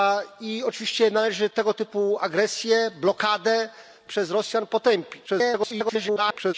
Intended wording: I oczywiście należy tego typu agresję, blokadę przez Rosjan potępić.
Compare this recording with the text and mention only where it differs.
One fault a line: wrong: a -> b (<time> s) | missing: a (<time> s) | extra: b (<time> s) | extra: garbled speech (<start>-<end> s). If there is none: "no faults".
extra: garbled speech (5.3-6.5 s)